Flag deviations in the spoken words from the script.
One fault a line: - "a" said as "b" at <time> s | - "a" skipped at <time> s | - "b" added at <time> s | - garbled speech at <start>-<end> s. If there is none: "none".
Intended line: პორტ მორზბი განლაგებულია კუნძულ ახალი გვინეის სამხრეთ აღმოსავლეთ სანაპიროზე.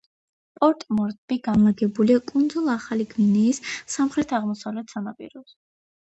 none